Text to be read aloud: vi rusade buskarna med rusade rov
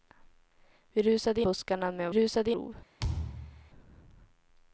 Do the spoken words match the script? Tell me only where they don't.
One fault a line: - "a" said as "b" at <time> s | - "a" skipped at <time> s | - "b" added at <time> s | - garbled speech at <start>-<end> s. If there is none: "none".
none